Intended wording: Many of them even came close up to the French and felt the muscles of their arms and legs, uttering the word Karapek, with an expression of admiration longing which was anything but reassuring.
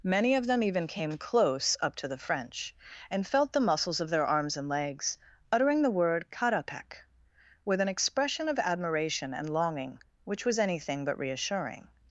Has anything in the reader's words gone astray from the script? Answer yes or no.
yes